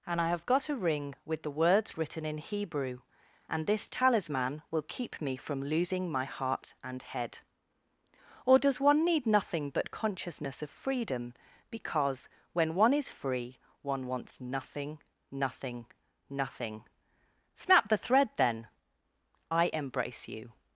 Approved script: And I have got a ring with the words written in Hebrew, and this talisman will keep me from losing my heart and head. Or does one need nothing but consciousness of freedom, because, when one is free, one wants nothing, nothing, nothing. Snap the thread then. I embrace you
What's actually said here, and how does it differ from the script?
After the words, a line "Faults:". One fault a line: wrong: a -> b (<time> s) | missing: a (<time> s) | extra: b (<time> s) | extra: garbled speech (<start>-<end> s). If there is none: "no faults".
And I have got a ring with the words written in Hebrew, and this talisman will keep me from losing my heart and head. Or does one need nothing but consciousness of freedom, because, when one is free, one wants nothing, nothing, nothing. Snap the thread then. I embrace you
Faults:
no faults